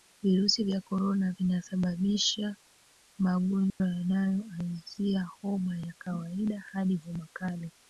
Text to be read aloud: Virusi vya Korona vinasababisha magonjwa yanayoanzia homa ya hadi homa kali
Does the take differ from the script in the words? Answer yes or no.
yes